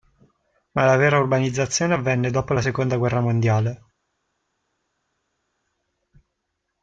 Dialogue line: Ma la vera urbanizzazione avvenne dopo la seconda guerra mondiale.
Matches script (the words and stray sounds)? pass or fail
pass